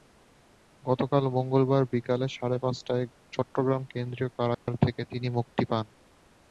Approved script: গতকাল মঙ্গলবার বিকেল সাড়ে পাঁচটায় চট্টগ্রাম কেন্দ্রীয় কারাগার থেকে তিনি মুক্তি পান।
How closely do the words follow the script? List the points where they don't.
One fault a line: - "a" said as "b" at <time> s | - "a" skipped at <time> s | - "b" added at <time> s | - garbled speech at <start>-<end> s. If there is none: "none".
none